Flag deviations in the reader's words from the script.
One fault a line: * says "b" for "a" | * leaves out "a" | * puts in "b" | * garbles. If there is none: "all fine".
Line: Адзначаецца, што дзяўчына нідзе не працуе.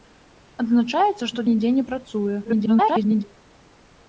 * leaves out "дзяўчына"
* garbles